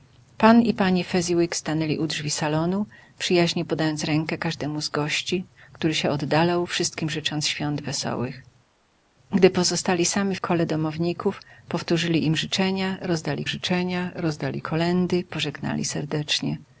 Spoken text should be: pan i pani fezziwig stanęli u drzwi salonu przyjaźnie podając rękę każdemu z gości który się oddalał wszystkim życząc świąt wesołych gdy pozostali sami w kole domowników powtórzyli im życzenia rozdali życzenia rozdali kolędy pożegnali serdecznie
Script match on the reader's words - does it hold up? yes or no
yes